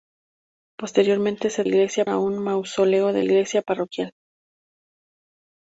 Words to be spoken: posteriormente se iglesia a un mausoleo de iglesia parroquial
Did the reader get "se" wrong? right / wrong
right